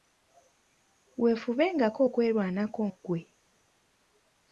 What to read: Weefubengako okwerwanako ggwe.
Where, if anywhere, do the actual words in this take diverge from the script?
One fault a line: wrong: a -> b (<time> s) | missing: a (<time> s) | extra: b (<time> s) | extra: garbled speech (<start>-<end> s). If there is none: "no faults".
no faults